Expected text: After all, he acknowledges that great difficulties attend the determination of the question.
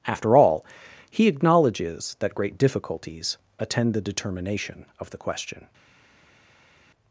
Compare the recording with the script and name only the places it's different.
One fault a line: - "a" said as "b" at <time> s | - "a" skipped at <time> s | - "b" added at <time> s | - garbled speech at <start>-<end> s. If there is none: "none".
none